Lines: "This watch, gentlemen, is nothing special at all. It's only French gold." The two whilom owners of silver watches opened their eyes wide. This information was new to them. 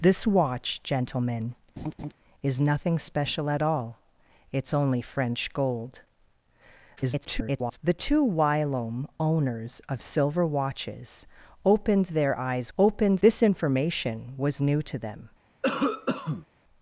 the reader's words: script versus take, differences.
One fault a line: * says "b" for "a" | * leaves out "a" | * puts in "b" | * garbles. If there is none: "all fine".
* garbles
* says "opened" for "wide"